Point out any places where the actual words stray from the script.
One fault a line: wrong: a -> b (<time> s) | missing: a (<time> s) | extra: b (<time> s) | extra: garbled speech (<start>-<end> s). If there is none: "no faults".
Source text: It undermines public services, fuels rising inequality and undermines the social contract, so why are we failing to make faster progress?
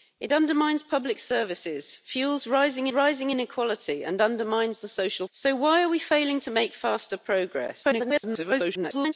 extra: rising (2.9 s)
missing: contract (5.3 s)
extra: garbled speech (7.8-9.1 s)